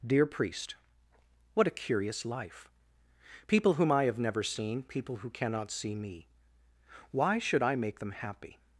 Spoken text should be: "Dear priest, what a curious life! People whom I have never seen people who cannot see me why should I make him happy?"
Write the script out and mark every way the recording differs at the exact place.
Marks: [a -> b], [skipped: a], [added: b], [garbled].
"Dear priest, what a curious life! People whom I have never seen people who cannot see me why should I make [him -> them] happy?"